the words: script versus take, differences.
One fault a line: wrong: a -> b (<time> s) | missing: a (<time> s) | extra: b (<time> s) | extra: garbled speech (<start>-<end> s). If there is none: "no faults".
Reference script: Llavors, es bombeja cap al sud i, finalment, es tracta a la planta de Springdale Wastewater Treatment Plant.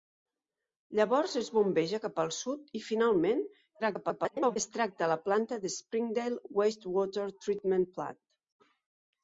extra: garbled speech (3.8-4.6 s)